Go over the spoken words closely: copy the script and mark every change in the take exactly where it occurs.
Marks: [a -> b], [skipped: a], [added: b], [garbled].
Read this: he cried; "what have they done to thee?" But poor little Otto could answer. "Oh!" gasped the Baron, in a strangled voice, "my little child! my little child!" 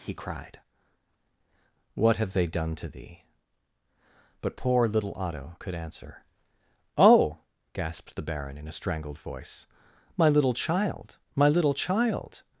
he cried; "what have they done to thee?" But poor little Otto could answer. "Oh!" gasped the Baron, in a strangled voice, "my little child! my little child!"